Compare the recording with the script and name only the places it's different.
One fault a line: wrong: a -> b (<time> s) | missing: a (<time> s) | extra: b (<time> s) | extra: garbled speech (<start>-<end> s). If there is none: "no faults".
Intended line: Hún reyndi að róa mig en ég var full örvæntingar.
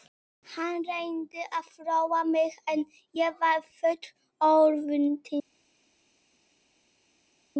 wrong: Hún -> Hann (0.5 s)